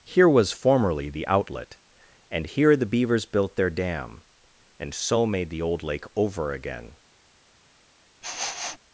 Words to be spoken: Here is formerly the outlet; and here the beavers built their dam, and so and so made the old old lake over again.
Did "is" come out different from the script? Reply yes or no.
yes